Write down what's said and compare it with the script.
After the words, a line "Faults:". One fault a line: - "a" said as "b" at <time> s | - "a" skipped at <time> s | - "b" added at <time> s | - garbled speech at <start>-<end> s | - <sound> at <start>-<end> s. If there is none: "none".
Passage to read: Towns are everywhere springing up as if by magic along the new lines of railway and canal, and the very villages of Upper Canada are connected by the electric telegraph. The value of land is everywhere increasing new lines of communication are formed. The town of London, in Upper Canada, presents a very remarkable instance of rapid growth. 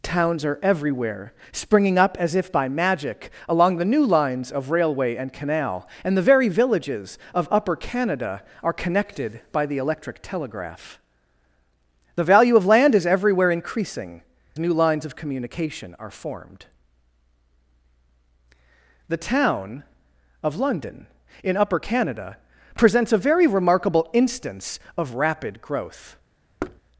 Towns are everywhere springing up as if by magic along the new lines of railway and canal, and the very villages of Upper Canada are connected by the electric telegraph. The value of land is everywhere increasing new lines of communication are formed. The town of London, in Upper Canada, presents a very remarkable instance of rapid growth.
Faults:
- thud at 26.6-26.8 s